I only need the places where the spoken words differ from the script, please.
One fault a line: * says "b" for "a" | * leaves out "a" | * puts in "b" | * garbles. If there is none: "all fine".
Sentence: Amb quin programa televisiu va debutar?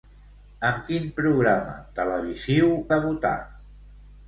* leaves out "va"